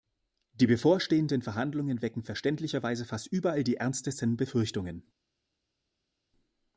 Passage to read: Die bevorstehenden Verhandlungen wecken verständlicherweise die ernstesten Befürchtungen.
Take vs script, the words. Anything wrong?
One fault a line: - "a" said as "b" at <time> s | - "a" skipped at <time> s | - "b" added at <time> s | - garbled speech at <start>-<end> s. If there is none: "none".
- "fast überall" added at 3.0 s